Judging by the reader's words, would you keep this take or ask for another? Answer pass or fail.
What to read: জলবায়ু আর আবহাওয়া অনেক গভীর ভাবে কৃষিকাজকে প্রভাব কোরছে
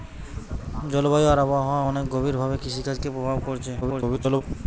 fail